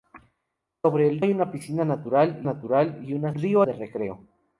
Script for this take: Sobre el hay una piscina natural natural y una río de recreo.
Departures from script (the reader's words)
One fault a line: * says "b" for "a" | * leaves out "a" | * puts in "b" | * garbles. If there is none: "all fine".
all fine